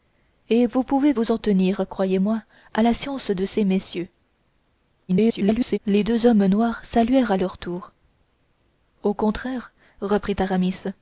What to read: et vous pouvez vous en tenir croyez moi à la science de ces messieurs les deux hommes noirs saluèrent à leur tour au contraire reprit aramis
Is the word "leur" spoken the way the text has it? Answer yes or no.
yes